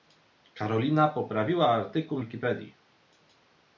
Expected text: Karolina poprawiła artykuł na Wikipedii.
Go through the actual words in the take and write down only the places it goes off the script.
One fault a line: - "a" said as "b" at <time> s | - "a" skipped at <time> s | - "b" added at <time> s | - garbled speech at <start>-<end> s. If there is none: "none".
- "na" skipped at 2.2 s